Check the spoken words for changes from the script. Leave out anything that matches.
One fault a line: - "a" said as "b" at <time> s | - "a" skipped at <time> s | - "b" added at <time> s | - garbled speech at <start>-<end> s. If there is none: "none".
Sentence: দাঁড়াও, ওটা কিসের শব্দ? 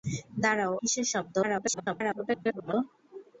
- "ওটা" skipped at 0.7 s
- garbled speech at 1.4-2.7 s